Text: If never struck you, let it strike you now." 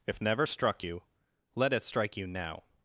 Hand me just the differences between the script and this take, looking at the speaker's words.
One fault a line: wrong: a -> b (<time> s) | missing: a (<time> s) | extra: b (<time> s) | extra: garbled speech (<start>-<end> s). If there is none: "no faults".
no faults